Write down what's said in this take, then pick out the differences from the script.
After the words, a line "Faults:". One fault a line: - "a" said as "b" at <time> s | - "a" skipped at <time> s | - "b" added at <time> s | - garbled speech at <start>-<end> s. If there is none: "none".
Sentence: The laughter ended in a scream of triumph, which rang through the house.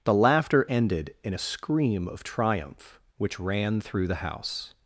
The laughter ended in a scream of triumph, which ran through the house.
Faults:
- "rang" said as "ran" at 3.4 s